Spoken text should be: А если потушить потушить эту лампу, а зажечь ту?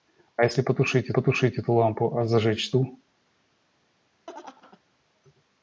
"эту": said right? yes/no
yes